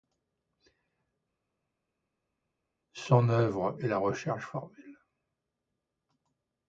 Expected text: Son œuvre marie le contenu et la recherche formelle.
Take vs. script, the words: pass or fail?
fail